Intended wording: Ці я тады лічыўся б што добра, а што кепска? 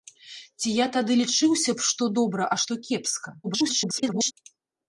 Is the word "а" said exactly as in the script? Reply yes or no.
yes